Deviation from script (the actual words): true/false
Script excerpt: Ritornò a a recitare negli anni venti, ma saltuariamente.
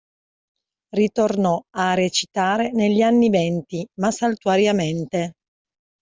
true